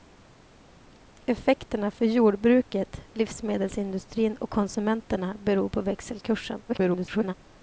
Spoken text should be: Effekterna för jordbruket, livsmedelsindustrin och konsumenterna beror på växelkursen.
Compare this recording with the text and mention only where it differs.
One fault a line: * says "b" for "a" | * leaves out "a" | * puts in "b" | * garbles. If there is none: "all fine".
* garbles